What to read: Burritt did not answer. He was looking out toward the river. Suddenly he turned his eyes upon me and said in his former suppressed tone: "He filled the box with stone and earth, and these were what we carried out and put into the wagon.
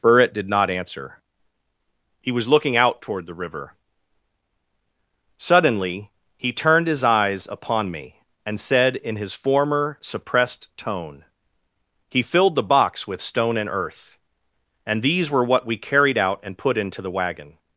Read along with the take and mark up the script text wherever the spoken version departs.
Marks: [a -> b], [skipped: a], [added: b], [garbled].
Burritt did not answer. He was looking out toward the river. Suddenly he turned his eyes upon me and said in his former suppressed tone: "He filled the box with stone and earth, and these were what we carried out and put into the wagon.